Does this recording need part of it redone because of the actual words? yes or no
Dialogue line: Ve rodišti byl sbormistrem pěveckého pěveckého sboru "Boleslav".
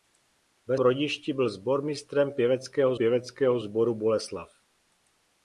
no